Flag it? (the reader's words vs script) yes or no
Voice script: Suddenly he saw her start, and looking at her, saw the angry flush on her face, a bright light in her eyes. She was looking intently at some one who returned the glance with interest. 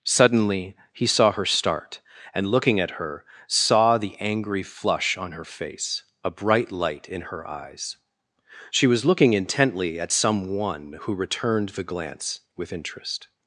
no